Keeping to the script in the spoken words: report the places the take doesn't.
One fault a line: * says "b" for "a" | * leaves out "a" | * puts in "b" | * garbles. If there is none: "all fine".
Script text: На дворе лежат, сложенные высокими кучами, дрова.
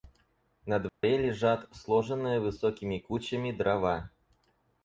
all fine